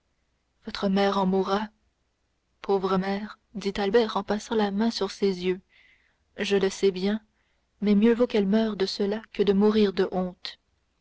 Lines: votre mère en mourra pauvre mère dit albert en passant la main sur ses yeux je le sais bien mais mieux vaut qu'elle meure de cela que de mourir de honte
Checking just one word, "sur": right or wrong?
right